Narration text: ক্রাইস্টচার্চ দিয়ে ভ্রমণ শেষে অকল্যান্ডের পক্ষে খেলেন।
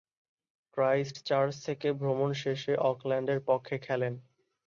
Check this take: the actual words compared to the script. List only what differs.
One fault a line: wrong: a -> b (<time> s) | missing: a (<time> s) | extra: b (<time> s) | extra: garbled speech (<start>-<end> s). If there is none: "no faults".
wrong: দিয়ে -> থেকে (1.6 s)